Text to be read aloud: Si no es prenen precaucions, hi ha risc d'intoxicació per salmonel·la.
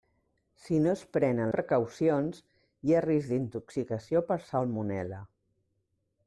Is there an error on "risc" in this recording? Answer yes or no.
no